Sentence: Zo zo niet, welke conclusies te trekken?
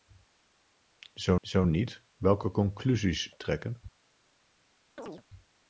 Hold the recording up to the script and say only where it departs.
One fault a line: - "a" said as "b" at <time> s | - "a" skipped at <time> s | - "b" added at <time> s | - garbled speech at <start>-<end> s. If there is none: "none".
none